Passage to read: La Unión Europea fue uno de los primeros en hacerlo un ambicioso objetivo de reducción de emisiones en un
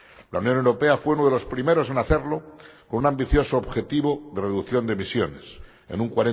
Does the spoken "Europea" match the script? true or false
true